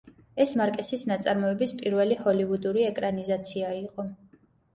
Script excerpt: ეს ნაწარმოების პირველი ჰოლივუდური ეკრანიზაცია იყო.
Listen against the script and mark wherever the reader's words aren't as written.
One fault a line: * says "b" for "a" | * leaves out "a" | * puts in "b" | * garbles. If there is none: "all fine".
* puts in "მარკესის"